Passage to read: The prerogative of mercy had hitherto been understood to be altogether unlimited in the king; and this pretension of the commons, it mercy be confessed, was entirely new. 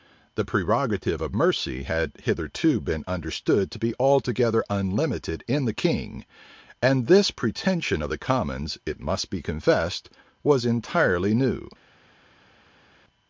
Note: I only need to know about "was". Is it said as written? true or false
true